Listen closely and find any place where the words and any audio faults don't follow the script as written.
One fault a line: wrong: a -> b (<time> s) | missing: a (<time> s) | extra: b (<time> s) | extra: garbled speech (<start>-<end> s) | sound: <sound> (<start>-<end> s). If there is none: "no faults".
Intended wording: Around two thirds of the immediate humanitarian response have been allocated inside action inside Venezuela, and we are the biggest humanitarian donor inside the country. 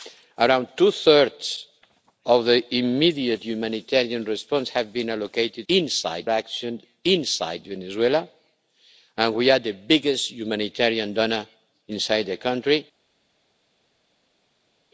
no faults